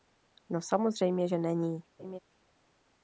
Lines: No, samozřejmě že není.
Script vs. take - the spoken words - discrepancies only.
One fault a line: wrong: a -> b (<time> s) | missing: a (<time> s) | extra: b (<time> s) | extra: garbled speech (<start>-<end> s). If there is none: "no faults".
no faults